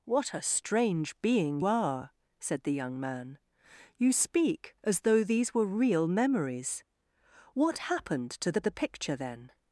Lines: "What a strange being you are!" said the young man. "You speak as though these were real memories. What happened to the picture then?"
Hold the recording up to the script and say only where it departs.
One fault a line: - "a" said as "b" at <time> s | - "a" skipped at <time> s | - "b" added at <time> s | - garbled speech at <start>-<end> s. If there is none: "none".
- "you" skipped at 1.6 s
- "the" added at 8.6 s